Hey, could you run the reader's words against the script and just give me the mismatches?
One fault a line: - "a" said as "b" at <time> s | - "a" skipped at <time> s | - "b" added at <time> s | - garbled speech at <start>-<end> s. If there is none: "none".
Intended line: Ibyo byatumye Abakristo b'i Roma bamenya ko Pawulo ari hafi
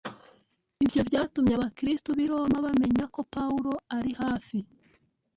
none